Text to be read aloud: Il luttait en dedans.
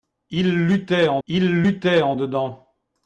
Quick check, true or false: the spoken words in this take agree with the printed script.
false